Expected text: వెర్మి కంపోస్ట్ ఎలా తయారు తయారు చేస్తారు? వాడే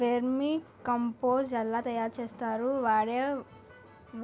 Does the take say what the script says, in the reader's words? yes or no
no